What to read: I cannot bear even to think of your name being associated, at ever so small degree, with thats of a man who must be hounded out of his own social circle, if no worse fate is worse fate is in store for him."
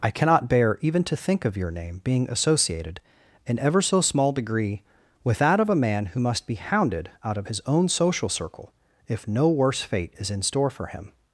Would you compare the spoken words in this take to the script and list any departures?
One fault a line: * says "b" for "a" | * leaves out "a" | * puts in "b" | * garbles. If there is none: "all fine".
* says "in" for "at"
* says "that" for "thats"
* leaves out "worse fate is"